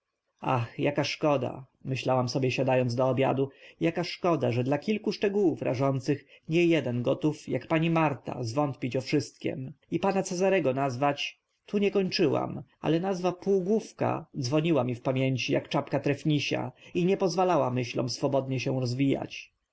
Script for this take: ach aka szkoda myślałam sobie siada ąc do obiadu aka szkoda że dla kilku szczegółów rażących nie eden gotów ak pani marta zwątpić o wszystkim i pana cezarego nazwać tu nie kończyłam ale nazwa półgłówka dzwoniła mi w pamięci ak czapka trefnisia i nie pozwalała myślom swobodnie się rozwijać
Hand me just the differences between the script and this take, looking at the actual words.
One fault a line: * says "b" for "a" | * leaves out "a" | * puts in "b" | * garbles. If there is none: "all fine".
all fine